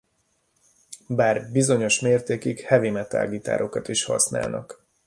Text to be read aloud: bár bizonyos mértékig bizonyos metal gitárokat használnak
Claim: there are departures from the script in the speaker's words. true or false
true